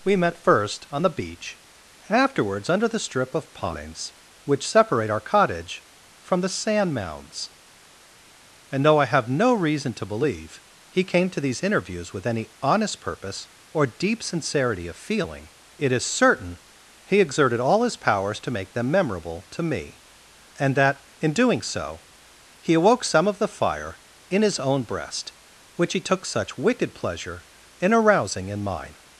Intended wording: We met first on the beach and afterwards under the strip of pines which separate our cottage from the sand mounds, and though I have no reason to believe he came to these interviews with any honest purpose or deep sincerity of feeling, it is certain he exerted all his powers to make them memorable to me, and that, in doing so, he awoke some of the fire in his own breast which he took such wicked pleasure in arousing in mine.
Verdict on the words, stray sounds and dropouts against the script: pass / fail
fail